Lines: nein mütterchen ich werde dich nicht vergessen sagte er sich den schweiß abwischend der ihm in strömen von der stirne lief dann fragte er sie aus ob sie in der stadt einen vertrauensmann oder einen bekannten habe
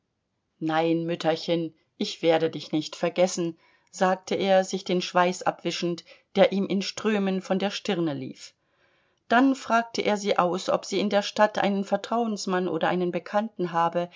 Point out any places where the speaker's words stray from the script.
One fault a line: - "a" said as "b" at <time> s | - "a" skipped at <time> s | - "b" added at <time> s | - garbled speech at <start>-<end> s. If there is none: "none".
none